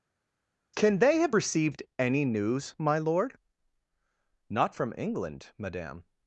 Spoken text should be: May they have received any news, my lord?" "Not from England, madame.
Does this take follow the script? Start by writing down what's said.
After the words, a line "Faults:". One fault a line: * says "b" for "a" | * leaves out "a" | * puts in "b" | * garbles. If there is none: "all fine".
Can they have received any news, my lord?" "Not from England, madame.
Faults:
* says "Can" for "May"